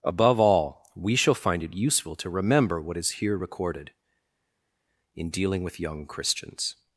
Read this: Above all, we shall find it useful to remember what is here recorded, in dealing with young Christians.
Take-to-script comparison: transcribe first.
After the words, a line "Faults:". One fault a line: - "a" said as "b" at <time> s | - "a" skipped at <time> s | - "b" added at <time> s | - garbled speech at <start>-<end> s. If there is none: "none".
Above all, we shall find it useful to remember what is here recorded, in dealing with young Christians.
Faults:
none